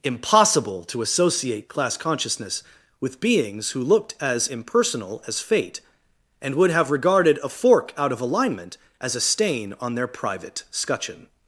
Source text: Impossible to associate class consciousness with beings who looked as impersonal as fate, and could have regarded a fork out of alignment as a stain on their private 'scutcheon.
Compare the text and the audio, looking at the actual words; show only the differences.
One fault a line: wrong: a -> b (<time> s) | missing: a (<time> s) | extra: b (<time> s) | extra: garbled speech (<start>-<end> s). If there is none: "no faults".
wrong: could -> would (6.5 s)